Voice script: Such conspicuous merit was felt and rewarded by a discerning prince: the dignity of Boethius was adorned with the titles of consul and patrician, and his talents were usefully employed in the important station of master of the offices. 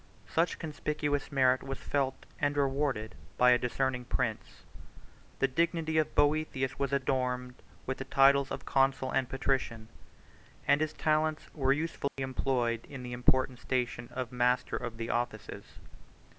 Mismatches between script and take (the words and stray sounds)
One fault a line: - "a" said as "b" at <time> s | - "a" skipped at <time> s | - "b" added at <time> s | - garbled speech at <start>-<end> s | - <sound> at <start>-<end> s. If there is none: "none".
- dropout at 12.1-12.2 s